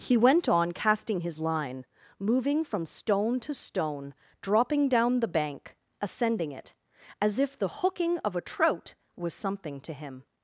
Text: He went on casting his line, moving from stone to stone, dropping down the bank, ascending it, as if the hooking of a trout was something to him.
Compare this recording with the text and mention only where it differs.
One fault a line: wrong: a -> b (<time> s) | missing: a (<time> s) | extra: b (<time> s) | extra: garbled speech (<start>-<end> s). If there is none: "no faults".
no faults